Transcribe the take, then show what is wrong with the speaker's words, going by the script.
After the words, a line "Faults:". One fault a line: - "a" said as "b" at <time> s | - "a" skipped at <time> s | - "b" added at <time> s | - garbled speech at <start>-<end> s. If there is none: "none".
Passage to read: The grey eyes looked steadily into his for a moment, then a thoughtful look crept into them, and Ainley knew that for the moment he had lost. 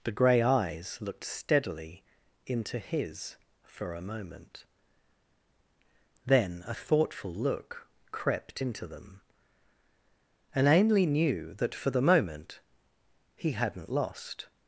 The grey eyes looked steadily into his for a moment, then a thoughtful look crept into them, and Ainley knew that for the moment he hadn't lost.
Faults:
- "had" said as "hadn't" at 13.5 s